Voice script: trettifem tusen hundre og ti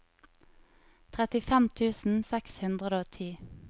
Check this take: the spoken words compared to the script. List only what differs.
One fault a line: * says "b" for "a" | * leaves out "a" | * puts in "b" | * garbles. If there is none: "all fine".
* puts in "seks"